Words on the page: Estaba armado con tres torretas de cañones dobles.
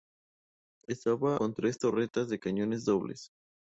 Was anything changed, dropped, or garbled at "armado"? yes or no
yes